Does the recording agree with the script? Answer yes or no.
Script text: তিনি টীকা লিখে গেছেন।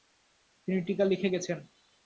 yes